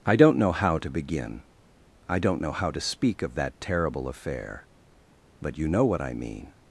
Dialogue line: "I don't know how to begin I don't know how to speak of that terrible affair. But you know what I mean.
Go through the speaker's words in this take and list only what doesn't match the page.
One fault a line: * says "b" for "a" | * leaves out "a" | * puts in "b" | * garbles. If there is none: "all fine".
all fine